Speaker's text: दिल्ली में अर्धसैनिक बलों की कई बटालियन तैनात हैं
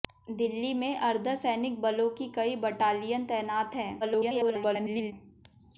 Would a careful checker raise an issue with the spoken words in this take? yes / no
yes